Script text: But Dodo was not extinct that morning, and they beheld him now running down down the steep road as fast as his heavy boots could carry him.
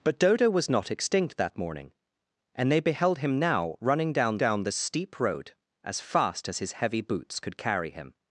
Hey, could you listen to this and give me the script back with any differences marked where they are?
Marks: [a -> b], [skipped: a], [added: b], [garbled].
But Dodo was not extinct that morning, and they beheld him now running down down the steep road as fast as his heavy boots could carry him.